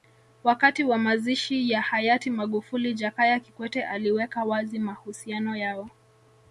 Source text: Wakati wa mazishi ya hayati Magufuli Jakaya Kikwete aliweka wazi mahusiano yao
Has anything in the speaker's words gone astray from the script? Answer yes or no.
no